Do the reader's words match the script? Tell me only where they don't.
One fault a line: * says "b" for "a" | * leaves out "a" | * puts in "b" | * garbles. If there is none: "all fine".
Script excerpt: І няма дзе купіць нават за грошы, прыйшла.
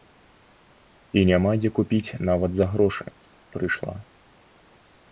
all fine